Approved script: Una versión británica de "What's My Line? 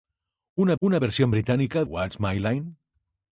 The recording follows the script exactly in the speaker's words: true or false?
false